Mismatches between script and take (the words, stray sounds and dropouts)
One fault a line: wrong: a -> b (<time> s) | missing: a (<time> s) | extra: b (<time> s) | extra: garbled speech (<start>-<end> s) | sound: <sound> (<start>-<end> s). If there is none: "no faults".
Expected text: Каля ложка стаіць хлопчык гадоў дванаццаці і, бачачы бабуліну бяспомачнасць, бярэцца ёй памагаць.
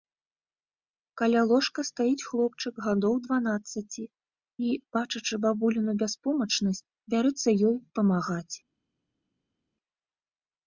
no faults